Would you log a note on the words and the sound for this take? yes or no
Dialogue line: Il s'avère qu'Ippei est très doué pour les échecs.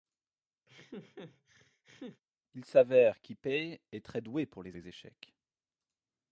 yes